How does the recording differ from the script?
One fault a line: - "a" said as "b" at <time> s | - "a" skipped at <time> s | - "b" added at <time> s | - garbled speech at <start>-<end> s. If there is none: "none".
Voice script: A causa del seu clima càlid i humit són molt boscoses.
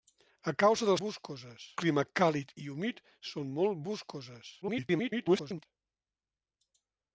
- "seu" said as "boscoses" at 1.0 s
- garbled speech at 4.6-5.7 s